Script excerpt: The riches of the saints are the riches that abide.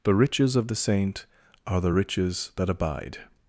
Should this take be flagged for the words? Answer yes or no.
yes